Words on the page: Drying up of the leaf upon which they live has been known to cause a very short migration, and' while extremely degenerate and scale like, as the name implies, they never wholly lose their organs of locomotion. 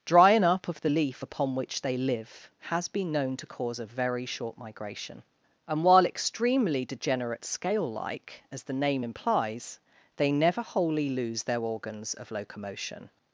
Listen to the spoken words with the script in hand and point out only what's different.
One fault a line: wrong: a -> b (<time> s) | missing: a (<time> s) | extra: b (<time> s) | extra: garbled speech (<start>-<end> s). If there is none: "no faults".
missing: and (7.4 s)